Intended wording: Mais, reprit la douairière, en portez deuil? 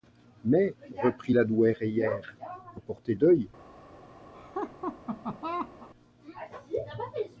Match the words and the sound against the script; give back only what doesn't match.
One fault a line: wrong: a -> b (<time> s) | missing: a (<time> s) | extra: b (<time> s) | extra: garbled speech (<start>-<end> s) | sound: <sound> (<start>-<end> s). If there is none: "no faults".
sound: laugh (4.3-5.9 s)